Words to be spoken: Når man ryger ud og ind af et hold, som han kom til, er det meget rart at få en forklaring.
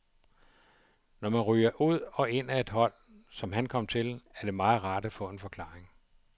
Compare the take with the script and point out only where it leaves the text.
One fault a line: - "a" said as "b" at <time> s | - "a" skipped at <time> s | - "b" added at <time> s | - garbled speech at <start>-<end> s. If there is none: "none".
none